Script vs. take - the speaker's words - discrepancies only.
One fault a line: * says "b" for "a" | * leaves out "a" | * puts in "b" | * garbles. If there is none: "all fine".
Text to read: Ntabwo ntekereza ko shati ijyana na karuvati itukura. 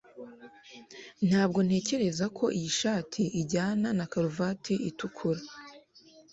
* puts in "iyi"